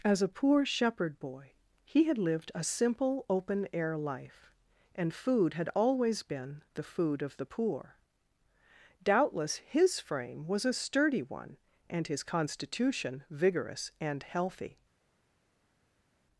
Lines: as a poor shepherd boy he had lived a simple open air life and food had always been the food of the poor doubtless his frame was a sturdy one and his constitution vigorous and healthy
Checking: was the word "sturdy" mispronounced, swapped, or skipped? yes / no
no